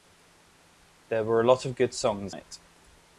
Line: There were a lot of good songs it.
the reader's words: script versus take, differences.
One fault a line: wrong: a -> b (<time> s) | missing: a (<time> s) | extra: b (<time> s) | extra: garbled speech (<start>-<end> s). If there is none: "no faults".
no faults